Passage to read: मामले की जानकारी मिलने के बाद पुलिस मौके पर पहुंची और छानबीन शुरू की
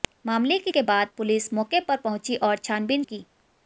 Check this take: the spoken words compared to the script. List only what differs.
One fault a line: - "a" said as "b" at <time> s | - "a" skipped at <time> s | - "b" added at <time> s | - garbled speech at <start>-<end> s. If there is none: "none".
- "जानकारी मिलने" skipped at 0.7 s
- "शुरू" skipped at 3.0 s